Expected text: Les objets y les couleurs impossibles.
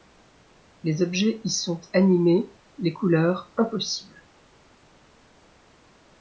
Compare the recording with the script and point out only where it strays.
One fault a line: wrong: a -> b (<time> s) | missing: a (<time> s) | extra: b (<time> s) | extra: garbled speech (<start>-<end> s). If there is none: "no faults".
extra: sont animés (1.5 s)